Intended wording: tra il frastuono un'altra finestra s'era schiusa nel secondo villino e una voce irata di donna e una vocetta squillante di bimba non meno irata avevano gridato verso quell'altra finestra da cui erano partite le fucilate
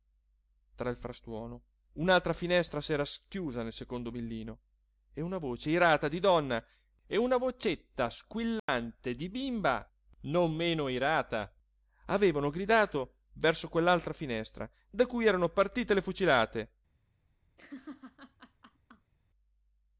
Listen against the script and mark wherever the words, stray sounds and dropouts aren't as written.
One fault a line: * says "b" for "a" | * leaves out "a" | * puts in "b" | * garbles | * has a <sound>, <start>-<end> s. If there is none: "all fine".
* has a dropout, 8.6-8.7 s
* has a laugh, 17.6-19.1 s